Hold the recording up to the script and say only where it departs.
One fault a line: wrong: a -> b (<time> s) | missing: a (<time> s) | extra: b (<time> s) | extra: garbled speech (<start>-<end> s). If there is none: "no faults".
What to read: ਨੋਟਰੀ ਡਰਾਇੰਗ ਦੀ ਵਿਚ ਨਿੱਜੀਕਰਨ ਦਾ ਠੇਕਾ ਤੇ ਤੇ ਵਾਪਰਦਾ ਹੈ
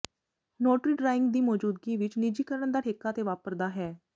extra: ਮੌਜੂਦਗੀ (1.4 s)
missing: ਤੇ (3.2 s)